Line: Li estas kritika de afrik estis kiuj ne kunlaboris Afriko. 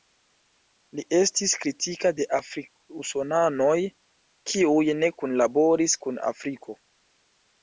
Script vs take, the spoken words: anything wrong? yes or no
yes